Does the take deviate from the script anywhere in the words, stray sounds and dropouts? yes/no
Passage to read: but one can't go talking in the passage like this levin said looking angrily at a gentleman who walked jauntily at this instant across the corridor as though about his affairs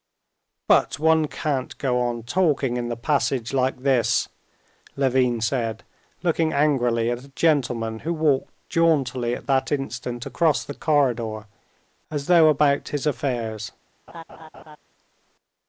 yes